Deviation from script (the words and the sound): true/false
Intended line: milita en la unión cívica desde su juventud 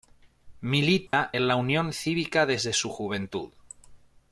true